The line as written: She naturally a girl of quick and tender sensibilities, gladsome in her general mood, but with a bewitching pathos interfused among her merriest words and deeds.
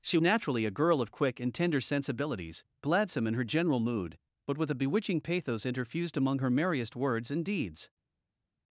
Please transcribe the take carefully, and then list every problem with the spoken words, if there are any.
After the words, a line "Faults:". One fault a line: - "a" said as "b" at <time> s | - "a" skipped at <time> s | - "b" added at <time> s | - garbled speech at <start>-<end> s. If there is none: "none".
She naturally a girl of quick and tender sensibilities, gladsome in her general mood, but with a bewitching pathos interfused among her merriest words and deeds.
Faults:
none